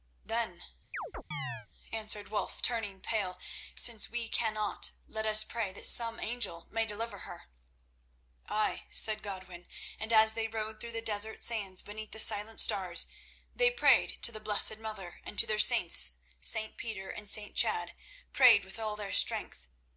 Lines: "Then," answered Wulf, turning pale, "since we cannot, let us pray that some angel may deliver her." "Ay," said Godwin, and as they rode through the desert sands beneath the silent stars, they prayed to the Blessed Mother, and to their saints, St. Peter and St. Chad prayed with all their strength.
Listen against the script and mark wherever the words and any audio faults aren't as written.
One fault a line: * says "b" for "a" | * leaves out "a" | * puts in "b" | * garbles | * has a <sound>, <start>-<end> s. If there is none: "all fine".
* has a chirp, 0.9-1.7 s